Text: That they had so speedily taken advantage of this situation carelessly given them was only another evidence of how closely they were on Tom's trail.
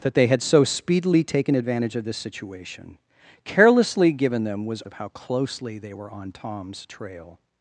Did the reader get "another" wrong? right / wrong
wrong